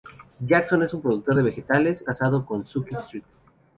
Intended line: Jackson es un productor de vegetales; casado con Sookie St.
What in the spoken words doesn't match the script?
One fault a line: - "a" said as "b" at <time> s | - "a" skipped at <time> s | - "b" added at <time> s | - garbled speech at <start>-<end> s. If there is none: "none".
none